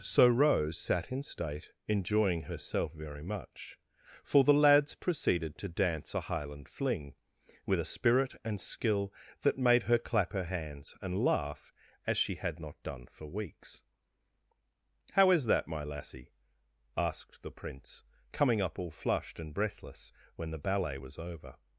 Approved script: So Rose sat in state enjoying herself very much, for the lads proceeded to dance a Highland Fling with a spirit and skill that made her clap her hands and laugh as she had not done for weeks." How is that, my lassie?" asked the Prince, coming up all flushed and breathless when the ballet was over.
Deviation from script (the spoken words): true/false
false